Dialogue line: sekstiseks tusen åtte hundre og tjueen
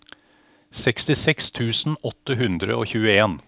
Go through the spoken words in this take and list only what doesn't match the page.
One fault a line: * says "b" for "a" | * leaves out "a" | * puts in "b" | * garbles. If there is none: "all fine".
all fine